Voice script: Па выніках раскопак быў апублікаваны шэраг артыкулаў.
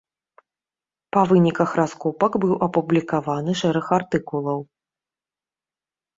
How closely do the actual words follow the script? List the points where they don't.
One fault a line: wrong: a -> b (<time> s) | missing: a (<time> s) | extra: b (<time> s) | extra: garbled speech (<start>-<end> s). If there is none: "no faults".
no faults